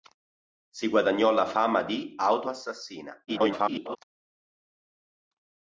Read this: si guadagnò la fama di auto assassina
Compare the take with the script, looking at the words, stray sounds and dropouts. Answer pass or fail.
fail